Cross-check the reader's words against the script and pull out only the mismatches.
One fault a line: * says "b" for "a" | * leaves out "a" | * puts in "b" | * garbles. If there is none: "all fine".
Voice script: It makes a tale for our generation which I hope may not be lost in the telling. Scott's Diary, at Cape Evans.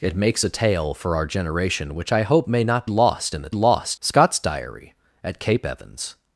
* leaves out "be"
* says "lost" for "telling"